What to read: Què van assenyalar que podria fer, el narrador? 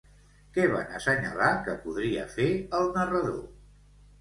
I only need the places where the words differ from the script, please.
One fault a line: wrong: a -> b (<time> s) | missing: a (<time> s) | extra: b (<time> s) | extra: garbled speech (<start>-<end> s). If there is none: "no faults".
no faults